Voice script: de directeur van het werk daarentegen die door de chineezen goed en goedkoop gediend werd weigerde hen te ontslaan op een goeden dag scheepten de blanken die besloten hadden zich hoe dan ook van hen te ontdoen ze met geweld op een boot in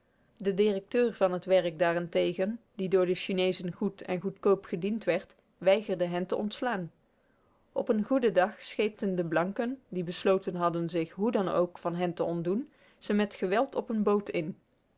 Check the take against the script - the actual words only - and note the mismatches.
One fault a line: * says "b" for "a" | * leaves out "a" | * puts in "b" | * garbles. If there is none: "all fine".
all fine